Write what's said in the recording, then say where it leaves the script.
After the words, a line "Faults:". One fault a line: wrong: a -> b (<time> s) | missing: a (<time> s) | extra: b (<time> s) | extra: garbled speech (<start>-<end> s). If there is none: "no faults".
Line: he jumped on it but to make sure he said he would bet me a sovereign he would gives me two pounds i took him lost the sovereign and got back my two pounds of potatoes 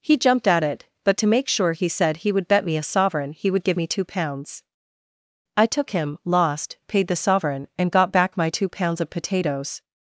he jumped at it but to make sure he said he would bet me a sovereign he would give me two pounds i took him lost paid the sovereign and got back my two pounds of potatoes
Faults:
wrong: on -> at (0.5 s)
wrong: gives -> give (3.6 s)
extra: paid (6.9 s)